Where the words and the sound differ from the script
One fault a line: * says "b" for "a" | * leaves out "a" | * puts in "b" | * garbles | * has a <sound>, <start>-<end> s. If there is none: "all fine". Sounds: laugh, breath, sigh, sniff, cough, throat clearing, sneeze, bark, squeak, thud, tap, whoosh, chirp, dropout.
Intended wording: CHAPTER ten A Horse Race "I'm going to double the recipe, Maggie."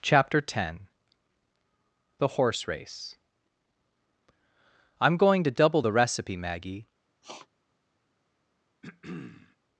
* says "The" for "A"
* has a sniff, 7.2-7.5 s
* has a throat clearing, 8.8-9.6 s